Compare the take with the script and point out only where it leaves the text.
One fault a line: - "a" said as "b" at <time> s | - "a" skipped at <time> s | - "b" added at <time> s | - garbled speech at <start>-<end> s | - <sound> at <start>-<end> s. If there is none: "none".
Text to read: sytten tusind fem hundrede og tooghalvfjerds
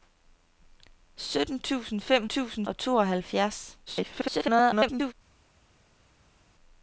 - "hundrede" said as "tusind" at 2.2 s
- garbled speech at 3.9-5.1 s